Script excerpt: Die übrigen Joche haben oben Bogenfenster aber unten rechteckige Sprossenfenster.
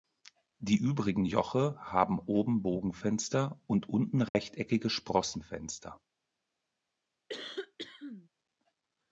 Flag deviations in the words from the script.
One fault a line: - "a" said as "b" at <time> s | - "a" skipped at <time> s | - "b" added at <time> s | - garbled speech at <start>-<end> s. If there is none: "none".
- "aber" said as "und" at 3.6 s